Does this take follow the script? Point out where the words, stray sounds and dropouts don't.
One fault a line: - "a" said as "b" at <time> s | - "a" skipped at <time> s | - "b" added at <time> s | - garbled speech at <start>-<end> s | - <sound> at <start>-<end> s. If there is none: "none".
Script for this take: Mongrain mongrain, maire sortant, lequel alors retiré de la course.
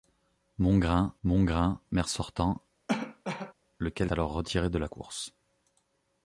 - cough at 2.9-3.5 s